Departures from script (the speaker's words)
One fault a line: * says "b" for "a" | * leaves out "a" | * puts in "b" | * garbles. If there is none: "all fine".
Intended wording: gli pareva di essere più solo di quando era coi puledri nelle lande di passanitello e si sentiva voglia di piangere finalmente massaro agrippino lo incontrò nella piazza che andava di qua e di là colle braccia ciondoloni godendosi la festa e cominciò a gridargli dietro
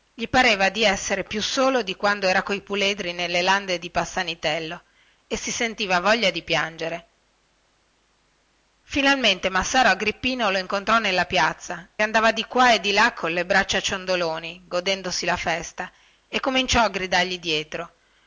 * leaves out "che"